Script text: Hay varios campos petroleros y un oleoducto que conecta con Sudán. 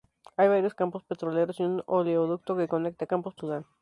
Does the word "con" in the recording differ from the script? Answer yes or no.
yes